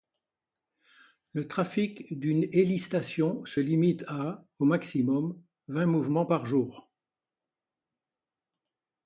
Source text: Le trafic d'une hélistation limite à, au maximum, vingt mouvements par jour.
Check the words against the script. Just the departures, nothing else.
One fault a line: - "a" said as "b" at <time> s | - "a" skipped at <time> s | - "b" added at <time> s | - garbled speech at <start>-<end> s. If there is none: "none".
- "se" added at 3.4 s